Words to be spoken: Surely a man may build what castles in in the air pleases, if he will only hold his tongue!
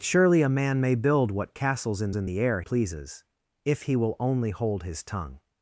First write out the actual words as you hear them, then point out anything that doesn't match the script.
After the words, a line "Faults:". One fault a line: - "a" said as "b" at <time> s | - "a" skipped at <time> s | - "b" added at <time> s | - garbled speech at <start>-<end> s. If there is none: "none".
Surely a man may build what castles in in the air pleases, if he will only hold his tongue!
Faults:
none